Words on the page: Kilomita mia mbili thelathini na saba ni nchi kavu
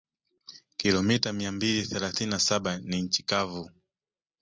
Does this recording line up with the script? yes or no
yes